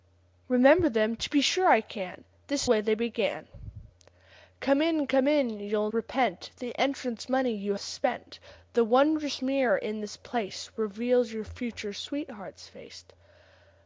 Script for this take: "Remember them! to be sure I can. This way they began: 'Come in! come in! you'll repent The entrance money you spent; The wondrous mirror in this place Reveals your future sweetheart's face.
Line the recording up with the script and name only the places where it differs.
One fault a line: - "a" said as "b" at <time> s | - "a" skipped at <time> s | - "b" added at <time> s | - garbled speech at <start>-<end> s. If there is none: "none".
none